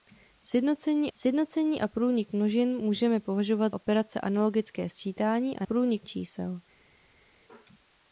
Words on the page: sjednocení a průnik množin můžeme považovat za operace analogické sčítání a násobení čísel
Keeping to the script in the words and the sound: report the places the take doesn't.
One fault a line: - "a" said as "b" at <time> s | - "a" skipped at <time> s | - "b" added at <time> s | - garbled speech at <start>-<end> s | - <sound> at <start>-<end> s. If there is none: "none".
- "sjednocení" added at 1.1 s
- "za" skipped at 3.7 s
- "násobení" said as "průnik" at 5.6 s